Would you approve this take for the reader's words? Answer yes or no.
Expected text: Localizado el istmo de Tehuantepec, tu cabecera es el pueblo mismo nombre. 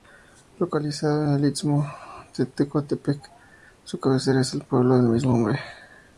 no